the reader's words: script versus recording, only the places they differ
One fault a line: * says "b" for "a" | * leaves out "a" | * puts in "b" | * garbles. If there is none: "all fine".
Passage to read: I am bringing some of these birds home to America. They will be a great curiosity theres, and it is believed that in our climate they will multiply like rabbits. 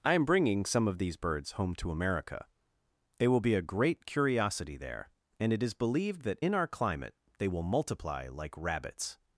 * says "there" for "theres"